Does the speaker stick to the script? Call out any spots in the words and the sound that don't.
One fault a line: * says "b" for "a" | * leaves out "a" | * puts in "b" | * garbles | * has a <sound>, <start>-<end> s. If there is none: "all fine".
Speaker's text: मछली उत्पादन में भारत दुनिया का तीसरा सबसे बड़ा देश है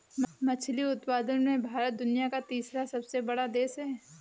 all fine